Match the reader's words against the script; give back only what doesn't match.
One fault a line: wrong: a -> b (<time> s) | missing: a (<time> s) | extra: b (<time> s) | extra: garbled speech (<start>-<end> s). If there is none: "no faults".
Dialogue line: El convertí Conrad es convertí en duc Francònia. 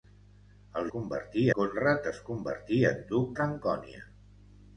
no faults